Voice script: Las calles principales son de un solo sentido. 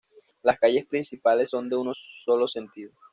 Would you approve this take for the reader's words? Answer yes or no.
yes